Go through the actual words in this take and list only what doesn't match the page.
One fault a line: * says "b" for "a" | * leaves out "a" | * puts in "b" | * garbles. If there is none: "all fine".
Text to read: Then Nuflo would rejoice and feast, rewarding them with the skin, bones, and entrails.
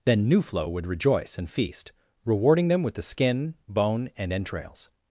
* says "bone" for "bones"